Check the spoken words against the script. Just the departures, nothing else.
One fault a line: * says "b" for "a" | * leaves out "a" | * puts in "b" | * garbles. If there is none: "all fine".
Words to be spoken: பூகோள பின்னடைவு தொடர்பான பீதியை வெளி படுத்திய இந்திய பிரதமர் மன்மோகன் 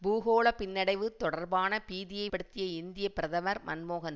* leaves out "வெளி"